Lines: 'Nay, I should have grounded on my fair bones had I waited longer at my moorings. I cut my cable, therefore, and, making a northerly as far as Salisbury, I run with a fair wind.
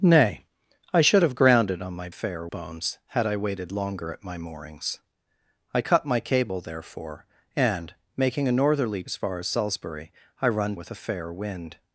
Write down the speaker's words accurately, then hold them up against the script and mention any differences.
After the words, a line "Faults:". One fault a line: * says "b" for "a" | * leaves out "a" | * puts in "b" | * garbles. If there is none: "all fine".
'Nay, I should have grounded on my fair bones had I waited longer at my moorings. I cut my cable, therefore, and, making a northerly as far as Salisbury, I run with a fair wind.
Faults:
all fine